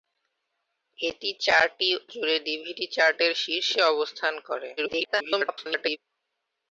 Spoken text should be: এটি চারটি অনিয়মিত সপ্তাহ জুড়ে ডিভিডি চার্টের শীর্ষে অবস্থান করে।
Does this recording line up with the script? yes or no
no